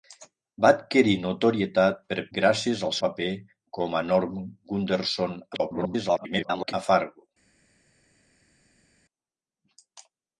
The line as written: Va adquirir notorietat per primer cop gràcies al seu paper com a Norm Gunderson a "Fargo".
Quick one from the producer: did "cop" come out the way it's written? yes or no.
no